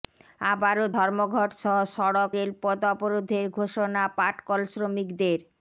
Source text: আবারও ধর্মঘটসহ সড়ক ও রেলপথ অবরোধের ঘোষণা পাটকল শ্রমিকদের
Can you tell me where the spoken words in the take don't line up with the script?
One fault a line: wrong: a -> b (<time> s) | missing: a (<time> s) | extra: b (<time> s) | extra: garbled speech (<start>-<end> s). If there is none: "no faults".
missing: ও (2.3 s)